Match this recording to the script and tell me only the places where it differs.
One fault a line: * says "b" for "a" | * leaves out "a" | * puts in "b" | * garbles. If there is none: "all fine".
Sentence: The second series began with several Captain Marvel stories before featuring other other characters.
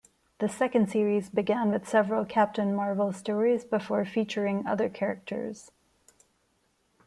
* leaves out "other"